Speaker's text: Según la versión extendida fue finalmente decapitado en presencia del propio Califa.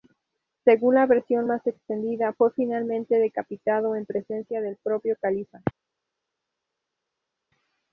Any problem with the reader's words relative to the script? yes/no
yes